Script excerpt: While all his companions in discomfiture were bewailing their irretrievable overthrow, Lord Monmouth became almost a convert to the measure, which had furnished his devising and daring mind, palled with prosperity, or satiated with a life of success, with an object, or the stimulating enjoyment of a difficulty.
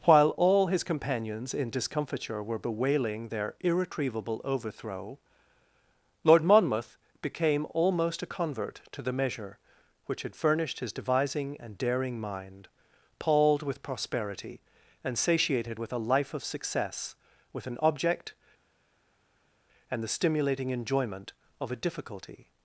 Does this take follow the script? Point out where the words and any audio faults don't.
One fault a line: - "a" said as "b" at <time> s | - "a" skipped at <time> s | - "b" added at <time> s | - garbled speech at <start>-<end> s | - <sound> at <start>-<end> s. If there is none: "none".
- "or" said as "and" at 15.0 s
- "or" said as "and" at 19.9 s